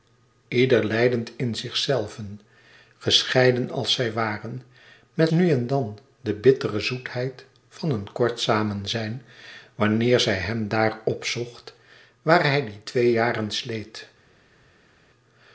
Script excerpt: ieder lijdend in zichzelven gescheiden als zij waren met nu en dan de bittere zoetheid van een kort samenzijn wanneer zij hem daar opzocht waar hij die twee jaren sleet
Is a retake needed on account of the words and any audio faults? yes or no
no